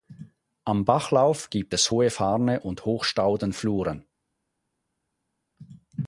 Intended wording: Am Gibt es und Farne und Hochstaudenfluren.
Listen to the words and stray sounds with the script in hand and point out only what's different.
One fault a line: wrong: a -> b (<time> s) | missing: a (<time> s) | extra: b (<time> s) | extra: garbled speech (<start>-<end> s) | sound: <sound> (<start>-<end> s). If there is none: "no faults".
extra: Bachlauf (0.8 s)
wrong: und -> hohe (1.9 s)